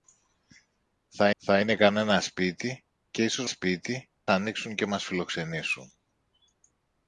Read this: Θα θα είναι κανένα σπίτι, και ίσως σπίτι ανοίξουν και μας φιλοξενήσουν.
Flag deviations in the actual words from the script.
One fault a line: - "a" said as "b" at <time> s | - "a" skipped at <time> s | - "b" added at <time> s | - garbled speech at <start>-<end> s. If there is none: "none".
none